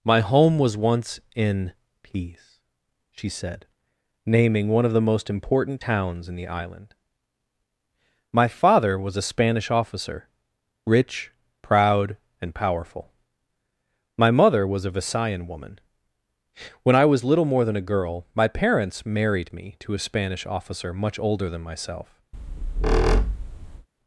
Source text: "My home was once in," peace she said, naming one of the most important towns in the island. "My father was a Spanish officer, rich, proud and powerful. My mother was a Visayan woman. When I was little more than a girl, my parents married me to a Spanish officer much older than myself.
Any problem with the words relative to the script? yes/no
no